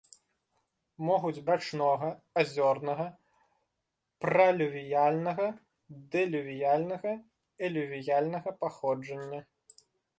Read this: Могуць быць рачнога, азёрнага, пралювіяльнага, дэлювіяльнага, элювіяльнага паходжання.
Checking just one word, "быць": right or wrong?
wrong